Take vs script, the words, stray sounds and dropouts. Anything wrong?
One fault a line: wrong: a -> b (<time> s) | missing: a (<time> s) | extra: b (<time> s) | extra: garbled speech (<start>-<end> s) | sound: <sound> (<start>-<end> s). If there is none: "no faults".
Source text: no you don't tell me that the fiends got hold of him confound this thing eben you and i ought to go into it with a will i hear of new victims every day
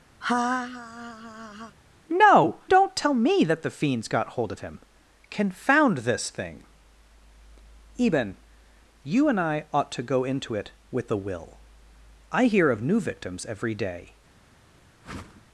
sound: laugh (0.2-1.8 s)
missing: you (2.6 s)
sound: whoosh (15.0-15.4 s)